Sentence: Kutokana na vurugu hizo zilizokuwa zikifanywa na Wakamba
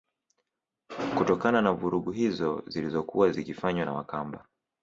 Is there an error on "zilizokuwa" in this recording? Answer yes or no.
no